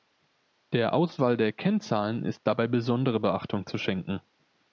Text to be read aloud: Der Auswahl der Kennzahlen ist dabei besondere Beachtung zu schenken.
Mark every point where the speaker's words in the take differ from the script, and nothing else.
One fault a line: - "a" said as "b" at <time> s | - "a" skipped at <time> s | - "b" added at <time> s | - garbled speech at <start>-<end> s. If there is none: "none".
none